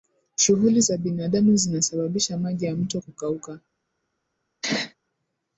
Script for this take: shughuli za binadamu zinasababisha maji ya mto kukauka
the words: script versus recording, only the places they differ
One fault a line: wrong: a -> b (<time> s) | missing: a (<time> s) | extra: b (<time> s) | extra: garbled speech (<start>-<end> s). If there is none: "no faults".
no faults